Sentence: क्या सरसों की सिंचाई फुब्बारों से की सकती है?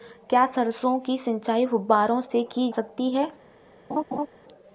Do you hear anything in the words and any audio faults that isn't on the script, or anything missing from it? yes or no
yes